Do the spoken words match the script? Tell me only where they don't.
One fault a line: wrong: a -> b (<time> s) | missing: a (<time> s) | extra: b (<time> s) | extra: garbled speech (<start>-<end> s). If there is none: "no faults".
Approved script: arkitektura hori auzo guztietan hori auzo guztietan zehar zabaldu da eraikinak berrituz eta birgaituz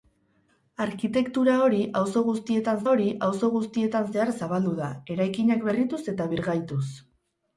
no faults